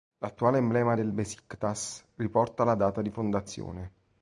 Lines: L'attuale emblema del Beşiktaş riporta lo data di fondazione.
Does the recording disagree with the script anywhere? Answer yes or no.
yes